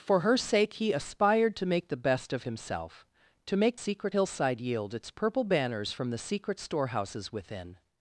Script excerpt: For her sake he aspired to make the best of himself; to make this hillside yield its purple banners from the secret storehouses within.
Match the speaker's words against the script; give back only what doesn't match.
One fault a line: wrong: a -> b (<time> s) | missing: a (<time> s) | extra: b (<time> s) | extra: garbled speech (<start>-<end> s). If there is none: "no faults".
wrong: this -> secret (3.7 s)